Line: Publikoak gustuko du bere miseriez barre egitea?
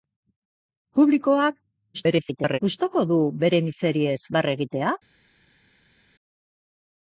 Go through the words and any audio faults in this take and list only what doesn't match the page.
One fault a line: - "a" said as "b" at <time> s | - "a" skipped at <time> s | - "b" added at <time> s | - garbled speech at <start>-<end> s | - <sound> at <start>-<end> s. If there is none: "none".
- garbled speech at 1.9-2.6 s